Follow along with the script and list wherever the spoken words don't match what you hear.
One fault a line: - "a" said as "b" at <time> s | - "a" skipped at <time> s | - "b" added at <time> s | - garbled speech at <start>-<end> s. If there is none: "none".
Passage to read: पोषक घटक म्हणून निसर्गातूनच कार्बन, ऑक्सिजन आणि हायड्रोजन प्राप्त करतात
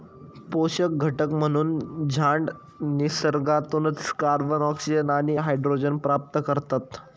- "झाडं" added at 2.1 s